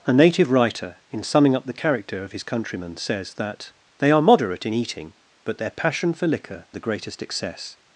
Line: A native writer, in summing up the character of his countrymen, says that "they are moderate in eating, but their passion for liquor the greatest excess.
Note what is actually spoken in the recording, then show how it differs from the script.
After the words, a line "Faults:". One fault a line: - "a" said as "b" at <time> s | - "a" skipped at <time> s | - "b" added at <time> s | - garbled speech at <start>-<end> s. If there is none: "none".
A native writer, in summing up the character of his countrymen, says that "they are moderate in eating, but their passion for liquor the greatest excess.
Faults:
none